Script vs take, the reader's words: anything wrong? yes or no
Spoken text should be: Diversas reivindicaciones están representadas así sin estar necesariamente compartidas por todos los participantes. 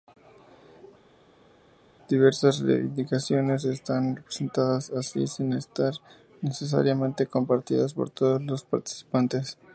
no